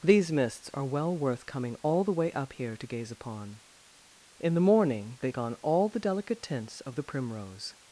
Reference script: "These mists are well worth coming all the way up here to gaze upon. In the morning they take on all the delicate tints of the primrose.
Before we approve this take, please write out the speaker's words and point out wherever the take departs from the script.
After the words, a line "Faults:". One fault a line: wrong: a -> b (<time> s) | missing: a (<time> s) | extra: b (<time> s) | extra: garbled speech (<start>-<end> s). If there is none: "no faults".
"These mists are well worth coming all the way up here to gaze upon. In the morning they on all the delicate tints of the primrose.
Faults:
missing: take (5.3 s)